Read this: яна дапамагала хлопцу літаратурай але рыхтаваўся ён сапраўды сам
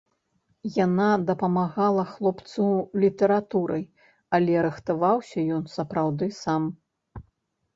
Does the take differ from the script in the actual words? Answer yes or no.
no